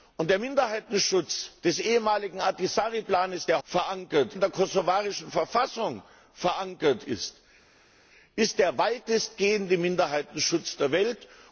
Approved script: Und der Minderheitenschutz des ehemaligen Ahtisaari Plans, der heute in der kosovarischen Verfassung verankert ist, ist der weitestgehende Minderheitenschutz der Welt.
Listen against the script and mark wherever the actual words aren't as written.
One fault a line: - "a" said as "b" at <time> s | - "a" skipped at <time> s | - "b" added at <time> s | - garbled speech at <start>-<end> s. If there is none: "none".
- "heute" said as "verankert" at 3.6 s